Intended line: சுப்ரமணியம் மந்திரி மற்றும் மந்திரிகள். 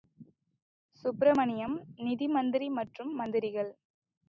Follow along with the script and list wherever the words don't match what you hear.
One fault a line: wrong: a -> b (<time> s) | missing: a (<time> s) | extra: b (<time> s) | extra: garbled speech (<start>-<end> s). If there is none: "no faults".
extra: நிதி (2.0 s)